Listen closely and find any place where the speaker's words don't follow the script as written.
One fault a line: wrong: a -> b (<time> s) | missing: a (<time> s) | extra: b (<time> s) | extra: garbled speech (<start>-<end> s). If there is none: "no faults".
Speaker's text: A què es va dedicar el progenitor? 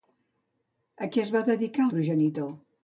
no faults